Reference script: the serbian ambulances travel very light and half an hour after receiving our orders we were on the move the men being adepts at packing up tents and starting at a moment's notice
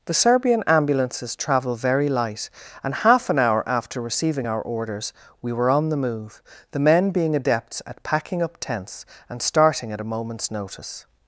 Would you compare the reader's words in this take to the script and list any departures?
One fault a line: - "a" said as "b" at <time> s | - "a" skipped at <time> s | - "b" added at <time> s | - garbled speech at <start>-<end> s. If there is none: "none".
none